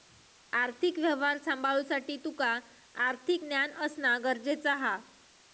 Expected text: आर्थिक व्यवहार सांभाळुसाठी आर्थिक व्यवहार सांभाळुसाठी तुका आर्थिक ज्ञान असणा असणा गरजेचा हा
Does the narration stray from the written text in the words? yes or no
yes